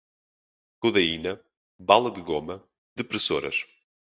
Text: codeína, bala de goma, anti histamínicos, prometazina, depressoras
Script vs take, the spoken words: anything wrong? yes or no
yes